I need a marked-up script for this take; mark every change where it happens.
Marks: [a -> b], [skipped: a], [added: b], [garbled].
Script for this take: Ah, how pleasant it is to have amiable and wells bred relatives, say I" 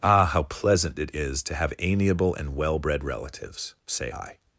Ah, how pleasant it is to have amiable and [wells -> well] bred relatives, say I"